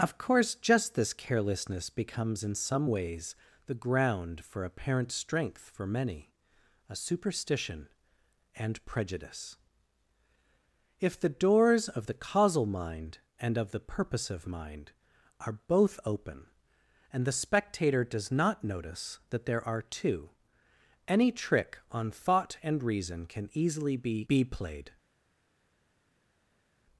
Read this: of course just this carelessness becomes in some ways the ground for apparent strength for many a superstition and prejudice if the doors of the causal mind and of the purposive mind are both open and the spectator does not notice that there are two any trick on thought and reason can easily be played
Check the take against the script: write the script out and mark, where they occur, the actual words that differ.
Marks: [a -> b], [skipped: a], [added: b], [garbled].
of course just this carelessness becomes in some ways the ground for apparent strength for many a superstition and prejudice if the doors of the causal mind and of the purposive mind are both open and the spectator does not notice that there are two any trick on thought and reason can easily be [added: be] played